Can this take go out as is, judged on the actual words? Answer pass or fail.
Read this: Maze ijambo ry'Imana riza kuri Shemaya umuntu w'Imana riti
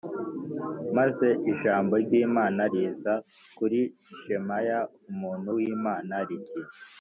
pass